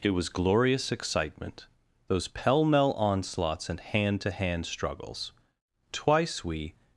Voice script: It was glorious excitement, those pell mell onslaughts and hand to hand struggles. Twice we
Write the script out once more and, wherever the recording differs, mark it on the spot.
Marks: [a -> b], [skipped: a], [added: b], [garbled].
It was glorious excitement, those pell mell onslaughts and hand to hand struggles. Twice we